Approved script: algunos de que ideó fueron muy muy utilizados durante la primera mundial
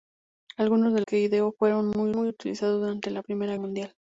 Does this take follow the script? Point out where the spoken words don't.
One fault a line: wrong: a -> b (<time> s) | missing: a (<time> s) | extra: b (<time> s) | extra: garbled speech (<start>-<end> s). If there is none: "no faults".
no faults